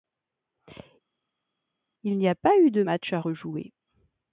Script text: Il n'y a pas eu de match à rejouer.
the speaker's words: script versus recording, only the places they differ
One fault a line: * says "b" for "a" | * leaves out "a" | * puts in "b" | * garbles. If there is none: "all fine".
all fine